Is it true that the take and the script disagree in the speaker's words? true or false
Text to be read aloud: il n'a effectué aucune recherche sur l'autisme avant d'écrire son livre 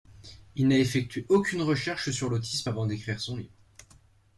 false